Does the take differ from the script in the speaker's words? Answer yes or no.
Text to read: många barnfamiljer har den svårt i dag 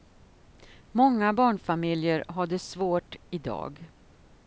yes